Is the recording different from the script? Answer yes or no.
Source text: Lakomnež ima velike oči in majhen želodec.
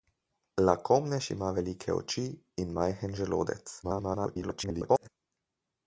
yes